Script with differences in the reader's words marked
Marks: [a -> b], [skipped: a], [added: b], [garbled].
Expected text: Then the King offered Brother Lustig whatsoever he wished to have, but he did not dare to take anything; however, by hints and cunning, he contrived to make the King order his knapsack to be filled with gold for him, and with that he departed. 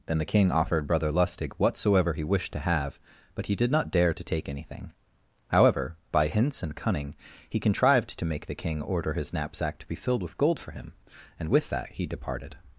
Then the King offered Brother Lustig whatsoever he wished to have, but he did not dare to take anything; however, by hints and cunning, he contrived to make the King order his knapsack to be filled with gold for him, and with that he departed.